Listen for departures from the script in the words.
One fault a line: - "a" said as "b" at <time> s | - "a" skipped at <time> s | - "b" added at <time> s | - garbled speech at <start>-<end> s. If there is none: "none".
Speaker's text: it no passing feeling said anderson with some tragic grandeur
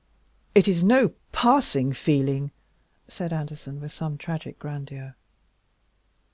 - "is" added at 0.7 s